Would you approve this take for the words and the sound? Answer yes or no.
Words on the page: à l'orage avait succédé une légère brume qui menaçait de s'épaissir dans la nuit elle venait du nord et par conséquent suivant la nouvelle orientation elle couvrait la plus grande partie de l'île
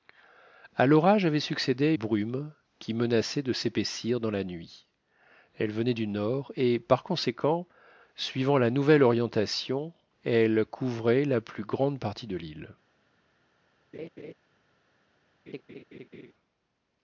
no